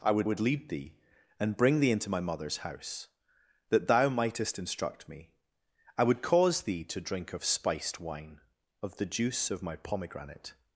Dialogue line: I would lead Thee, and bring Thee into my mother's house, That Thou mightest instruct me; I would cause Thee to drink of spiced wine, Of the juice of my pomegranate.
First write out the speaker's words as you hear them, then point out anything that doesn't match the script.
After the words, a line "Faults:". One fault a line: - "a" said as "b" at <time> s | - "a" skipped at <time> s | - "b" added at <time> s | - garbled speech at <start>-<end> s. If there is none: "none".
I would would lead Thee, and bring Thee into my mother's house, That Thou mightest instruct me; I would cause Thee to drink of spiced wine, Of the juice of my pomegranate.
Faults:
- "would" added at 0.2 s